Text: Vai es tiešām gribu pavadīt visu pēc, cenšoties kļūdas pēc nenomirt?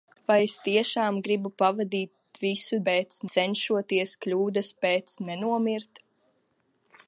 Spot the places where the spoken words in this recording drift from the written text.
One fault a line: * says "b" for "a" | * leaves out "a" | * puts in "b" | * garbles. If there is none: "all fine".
all fine